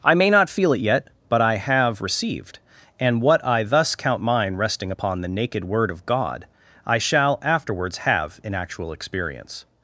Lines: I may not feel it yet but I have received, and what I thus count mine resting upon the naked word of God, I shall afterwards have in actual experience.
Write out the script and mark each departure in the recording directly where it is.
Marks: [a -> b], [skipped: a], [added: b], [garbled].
I may not feel it yet but I have received, and what I thus count mine resting upon the naked word of God, I shall afterwards have in actual experience.